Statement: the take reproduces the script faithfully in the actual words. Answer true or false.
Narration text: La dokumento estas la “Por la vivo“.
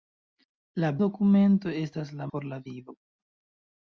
true